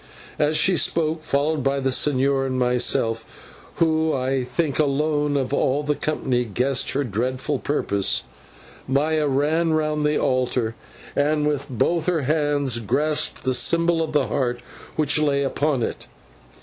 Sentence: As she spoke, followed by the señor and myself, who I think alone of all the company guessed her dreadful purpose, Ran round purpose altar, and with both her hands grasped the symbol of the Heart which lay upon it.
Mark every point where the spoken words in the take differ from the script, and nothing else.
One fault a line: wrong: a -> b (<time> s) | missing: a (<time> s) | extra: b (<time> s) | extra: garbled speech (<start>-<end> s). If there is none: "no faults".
extra: Maya (8.9 s)
wrong: purpose -> the (10.0 s)